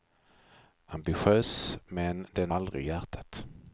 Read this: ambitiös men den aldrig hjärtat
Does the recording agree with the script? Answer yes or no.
yes